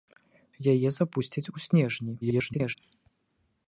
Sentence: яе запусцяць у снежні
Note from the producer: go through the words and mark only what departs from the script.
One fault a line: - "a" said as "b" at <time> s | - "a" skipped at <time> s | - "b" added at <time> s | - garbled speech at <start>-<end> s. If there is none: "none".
- garbled speech at 2.2-2.8 s